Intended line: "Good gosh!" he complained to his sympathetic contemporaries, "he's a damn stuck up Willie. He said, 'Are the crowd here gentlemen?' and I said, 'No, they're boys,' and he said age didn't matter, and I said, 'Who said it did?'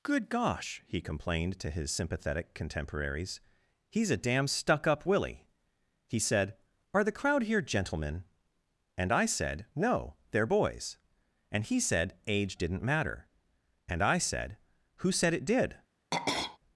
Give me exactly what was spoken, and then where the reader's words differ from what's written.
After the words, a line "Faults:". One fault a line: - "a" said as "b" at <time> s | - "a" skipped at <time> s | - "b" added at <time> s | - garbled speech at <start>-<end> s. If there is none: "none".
"Good gosh!" he complained to his sympathetic contemporaries, "he's a damn stuck up Willie. He said, 'Are the crowd here gentlemen?' and I said, 'No, they're boys,' and he said age didn't matter, and I said, 'Who said it did?'
Faults:
none